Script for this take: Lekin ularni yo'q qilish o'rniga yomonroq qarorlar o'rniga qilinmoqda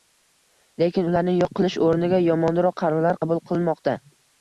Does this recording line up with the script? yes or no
no